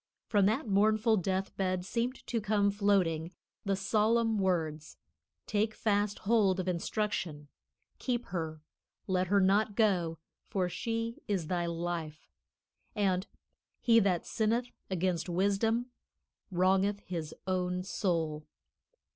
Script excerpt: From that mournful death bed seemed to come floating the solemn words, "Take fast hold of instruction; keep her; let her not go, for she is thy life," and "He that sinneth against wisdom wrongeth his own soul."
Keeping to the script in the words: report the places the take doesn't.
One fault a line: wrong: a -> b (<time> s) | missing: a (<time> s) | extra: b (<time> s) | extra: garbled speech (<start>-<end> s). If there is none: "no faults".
no faults